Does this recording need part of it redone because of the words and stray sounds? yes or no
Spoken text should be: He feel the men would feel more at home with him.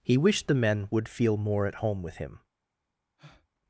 yes